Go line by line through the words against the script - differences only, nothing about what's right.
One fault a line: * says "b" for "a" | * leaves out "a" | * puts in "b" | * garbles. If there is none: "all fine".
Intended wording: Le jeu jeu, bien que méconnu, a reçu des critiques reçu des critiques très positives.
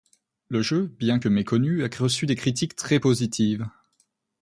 * leaves out "jeu"
* leaves out "reçu des critiques"